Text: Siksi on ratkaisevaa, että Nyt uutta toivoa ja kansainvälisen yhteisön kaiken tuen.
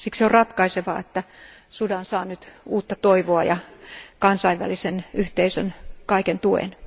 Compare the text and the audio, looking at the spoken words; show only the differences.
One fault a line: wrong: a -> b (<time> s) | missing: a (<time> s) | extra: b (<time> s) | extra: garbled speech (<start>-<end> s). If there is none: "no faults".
extra: Sudan saa (1.7 s)